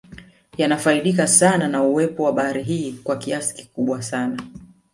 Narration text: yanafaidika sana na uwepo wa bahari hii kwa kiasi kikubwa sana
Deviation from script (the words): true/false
false